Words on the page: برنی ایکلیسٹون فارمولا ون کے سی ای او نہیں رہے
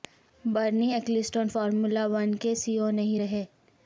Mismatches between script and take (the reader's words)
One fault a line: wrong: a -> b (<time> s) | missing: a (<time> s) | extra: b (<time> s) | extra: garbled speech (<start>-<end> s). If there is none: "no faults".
no faults